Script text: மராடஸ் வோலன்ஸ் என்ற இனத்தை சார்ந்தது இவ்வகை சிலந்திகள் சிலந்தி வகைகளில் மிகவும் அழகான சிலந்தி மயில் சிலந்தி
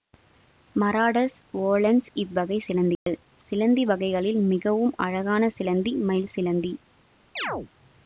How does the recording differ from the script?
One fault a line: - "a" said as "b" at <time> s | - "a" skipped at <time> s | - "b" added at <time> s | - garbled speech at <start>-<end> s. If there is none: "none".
- "என்ற இனத்தை சார்ந்தது" skipped at 2.1 s